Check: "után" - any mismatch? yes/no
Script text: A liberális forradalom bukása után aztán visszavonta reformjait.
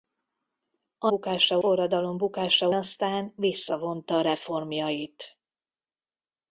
yes